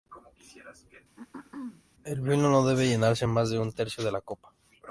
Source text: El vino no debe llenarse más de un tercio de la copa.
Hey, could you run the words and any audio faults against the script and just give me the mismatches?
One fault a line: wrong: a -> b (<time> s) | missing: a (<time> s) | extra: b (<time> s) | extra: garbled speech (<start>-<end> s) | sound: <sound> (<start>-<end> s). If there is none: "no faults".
sound: throat clearing (1.2-1.8 s)